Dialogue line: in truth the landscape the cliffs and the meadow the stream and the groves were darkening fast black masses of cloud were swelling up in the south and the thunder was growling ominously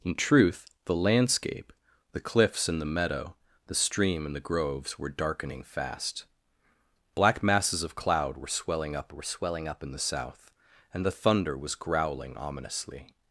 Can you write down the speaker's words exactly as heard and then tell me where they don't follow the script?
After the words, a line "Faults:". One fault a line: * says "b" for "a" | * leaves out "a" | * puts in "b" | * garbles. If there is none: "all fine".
in truth the landscape the cliffs and the meadow the stream and the groves were darkening fast black masses of cloud were swelling up were swelling up in the south and the thunder was growling ominously
Faults:
* puts in "were swelling up"